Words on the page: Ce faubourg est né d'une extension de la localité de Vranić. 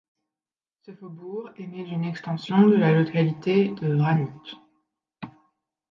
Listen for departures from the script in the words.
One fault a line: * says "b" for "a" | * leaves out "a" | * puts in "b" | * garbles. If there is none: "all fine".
all fine